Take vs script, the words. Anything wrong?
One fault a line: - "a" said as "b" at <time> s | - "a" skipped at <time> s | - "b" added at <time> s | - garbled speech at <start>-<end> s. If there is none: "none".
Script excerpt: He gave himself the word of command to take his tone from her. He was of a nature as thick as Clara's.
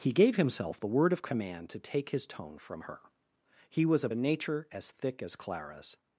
none